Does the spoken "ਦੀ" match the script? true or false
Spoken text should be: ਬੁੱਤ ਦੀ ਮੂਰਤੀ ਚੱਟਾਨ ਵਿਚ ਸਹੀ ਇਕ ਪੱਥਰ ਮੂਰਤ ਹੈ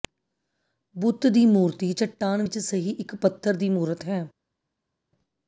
true